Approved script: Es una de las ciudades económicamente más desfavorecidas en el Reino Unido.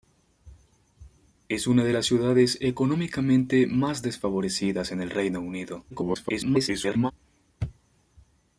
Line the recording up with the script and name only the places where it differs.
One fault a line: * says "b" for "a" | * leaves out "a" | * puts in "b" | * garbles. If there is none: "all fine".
* garbles